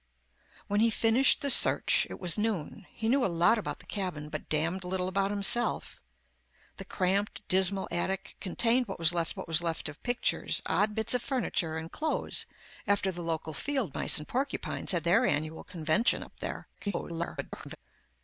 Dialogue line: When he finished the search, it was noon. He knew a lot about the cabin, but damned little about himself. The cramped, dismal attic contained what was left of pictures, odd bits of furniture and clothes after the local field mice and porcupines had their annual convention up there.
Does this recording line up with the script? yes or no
no